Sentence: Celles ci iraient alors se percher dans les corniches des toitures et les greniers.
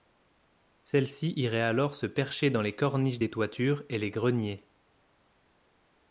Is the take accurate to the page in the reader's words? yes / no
yes